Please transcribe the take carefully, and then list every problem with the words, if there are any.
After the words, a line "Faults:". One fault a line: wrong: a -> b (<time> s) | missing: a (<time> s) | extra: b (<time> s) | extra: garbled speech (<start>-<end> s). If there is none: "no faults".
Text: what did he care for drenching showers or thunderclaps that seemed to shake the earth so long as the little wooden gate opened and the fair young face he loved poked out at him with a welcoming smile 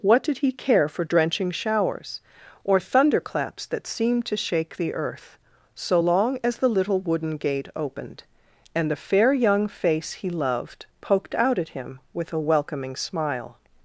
what did he care for drenching showers or thunderclaps that seemed to shake the earth so long as the little wooden gate opened and the fair young face he loved poked out at him with a welcoming smile
Faults:
no faults